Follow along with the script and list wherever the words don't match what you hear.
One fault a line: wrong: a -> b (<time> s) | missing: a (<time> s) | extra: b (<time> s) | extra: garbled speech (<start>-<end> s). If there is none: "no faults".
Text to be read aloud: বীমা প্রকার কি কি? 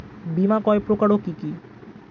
extra: কয় (0.7 s)